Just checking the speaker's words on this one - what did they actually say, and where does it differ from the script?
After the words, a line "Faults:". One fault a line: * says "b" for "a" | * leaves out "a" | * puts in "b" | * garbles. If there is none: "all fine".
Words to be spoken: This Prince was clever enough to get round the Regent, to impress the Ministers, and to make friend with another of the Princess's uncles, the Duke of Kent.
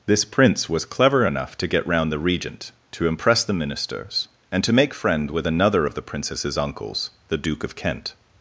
This Prince was clever enough to get round the Regent, to impress the Ministers, and to make friend with another of the Princess's uncles, the Duke of Kent.
Faults:
all fine